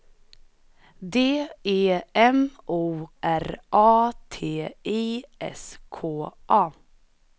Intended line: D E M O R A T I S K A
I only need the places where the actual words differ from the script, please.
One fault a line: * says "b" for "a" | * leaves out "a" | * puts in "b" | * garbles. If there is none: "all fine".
all fine